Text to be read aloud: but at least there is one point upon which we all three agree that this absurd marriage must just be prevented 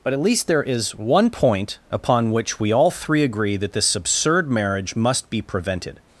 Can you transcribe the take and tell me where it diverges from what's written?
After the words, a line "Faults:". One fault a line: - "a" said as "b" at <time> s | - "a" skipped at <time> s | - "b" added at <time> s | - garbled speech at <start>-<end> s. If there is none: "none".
but at least there is one point upon which we all three agree that this absurd marriage must be prevented
Faults:
- "just" skipped at 5.3 s